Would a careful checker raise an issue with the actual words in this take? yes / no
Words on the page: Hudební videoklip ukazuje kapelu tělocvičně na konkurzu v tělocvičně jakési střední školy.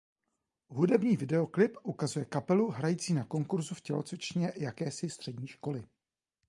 yes